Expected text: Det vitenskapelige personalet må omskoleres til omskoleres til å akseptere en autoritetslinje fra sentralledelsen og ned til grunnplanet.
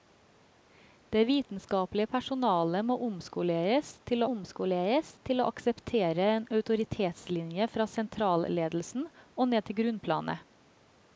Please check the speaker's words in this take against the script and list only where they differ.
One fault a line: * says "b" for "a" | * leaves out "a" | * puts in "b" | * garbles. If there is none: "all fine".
all fine